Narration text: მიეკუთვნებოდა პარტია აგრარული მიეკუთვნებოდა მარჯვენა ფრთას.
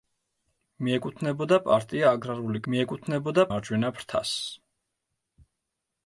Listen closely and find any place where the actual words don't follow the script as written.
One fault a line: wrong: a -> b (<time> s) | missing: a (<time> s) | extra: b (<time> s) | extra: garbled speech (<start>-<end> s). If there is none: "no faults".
no faults